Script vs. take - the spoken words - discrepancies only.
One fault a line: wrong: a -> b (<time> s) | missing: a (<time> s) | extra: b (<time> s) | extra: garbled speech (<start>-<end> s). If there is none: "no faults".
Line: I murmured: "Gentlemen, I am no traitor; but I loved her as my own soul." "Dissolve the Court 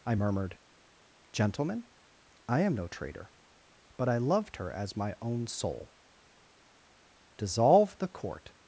no faults